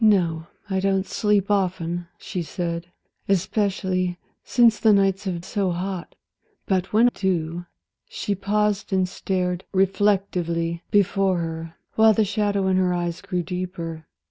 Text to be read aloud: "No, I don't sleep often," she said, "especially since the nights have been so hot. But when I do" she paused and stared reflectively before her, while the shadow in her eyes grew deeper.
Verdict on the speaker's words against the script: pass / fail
fail